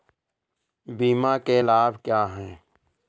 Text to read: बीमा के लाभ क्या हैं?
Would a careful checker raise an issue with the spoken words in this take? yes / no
no